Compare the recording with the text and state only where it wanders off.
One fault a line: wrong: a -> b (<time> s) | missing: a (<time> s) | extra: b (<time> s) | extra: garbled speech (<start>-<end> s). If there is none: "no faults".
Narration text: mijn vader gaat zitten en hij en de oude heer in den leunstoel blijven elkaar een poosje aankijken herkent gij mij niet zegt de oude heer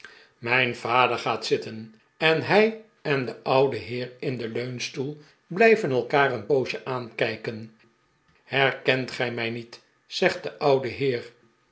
no faults